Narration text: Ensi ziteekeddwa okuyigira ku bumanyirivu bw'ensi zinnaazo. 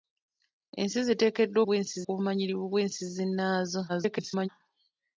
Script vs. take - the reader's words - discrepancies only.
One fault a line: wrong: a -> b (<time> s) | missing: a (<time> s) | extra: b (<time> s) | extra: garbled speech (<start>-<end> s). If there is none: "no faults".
wrong: okuyigira -> bw'ensi (1.7 s)
extra: garbled speech (3.9-4.5 s)